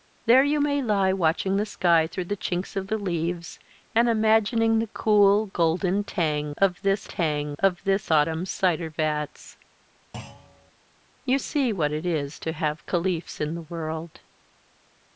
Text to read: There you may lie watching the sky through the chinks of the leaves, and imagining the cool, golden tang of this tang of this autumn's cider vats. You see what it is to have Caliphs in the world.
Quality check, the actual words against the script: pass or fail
pass